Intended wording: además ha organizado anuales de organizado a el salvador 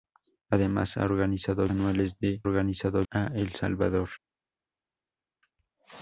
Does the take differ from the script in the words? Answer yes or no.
no